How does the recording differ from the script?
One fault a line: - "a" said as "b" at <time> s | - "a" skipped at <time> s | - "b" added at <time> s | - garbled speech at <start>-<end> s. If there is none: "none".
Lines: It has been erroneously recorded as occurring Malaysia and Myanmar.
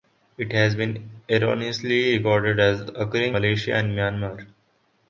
none